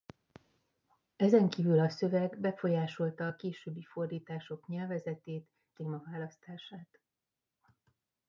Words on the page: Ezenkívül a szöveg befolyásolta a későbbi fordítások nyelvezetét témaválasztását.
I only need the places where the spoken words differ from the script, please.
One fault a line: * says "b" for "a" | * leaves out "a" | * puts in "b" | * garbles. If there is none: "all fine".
all fine